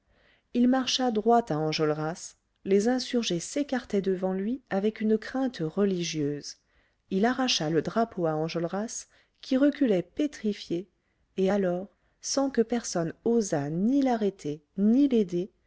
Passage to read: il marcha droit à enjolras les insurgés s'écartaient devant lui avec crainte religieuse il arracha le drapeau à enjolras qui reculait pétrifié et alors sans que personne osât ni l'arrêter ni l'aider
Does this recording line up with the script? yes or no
no